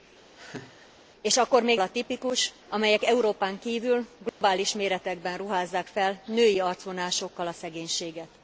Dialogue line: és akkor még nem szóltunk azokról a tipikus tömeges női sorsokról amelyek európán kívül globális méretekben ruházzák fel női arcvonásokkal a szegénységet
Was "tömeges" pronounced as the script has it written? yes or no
no